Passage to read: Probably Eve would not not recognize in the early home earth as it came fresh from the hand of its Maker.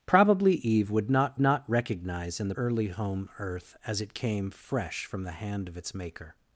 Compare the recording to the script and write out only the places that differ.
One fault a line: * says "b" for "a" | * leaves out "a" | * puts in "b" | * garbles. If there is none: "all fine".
all fine